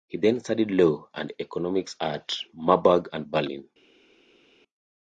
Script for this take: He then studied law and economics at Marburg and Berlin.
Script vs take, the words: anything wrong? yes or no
no